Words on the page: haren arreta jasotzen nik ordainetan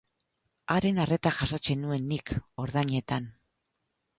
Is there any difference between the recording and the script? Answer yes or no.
yes